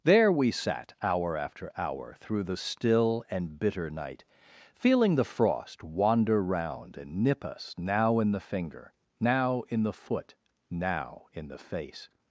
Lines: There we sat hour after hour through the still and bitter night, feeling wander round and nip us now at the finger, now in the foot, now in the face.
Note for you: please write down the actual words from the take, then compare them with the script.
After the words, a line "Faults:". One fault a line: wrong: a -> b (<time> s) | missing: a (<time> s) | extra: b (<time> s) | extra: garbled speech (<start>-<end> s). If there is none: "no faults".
There we sat hour after hour through the still and bitter night, feeling the frost wander round and nip us now in the finger, now in the foot, now in the face.
Faults:
extra: the frost (5.1 s)
wrong: at -> in (8.2 s)